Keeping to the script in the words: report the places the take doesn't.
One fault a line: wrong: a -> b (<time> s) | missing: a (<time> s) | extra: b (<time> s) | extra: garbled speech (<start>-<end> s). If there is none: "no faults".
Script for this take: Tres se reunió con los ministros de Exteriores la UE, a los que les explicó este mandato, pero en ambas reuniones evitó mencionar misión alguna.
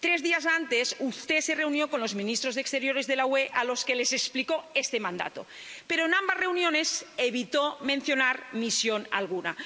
extra: días antes usted (0.2 s)
extra: de (3.0 s)